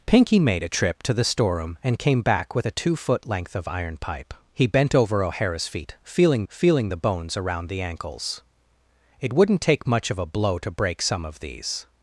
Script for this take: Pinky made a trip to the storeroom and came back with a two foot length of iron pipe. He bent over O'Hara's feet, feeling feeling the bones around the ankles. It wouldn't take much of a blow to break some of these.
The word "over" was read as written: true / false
true